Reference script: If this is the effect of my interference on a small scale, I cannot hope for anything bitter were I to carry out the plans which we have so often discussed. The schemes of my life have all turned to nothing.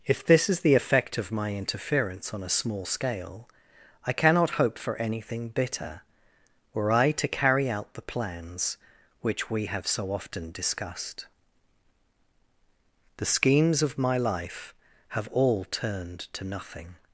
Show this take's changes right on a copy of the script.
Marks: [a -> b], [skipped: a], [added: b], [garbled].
If this is the effect of my interference on a small scale, I cannot hope for anything bitter were I to carry out the plans which we have so often discussed. The schemes of my life have all turned to nothing.